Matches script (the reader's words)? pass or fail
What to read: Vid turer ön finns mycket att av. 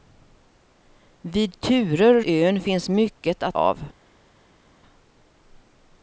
pass